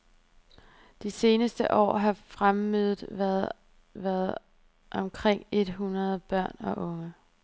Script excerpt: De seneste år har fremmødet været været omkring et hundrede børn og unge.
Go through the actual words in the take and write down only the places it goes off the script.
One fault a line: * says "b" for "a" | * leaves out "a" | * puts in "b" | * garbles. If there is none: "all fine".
all fine